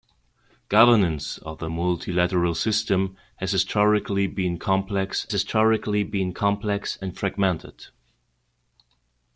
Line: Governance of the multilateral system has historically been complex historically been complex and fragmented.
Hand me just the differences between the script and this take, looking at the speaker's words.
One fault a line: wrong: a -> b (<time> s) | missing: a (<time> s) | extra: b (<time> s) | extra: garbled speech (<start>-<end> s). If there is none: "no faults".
no faults